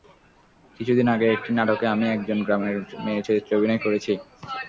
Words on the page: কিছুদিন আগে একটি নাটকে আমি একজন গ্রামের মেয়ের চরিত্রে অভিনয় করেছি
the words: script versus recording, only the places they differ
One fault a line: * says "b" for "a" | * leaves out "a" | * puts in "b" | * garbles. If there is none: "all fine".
all fine